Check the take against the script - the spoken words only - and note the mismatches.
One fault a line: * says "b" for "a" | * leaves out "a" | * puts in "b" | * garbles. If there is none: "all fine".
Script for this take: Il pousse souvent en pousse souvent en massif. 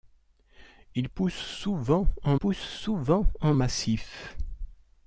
all fine